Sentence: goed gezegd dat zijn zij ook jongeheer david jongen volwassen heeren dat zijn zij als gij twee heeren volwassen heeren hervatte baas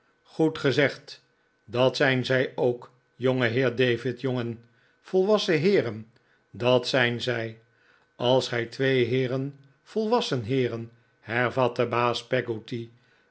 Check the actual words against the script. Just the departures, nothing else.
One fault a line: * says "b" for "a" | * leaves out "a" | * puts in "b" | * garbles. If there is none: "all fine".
all fine